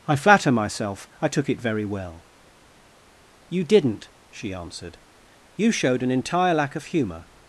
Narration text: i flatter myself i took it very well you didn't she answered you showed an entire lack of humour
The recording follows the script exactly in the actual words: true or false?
true